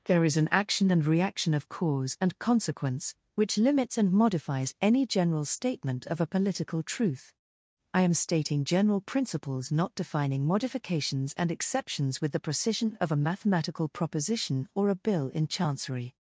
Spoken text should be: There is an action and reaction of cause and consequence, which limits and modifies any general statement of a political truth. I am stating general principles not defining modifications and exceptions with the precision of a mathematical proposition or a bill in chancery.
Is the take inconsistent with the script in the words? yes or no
no